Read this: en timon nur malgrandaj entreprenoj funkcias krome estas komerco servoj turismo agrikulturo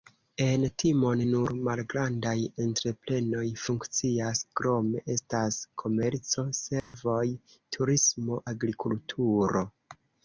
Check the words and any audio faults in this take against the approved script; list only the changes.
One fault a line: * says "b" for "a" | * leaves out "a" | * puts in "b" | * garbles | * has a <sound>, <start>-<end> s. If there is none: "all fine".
* has a dropout, 6.8-6.9 s